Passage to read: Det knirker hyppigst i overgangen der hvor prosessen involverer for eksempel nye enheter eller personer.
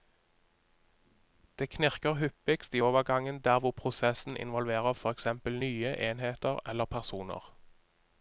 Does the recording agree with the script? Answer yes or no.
yes